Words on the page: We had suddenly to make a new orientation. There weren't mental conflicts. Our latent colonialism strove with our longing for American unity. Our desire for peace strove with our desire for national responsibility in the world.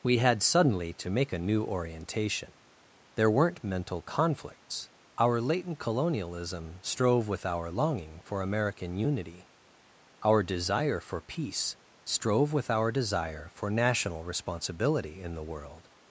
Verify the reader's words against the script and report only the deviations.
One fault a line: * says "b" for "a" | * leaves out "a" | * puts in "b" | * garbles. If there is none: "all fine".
all fine